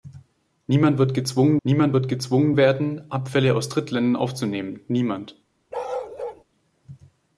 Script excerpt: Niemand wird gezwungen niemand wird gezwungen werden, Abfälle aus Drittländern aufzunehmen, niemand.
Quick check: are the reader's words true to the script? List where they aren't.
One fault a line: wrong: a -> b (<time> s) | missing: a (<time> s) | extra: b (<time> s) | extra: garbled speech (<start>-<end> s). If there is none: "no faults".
no faults